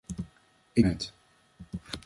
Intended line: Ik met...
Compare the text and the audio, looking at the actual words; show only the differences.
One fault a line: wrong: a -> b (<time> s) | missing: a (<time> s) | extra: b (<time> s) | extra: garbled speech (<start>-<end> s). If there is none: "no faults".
no faults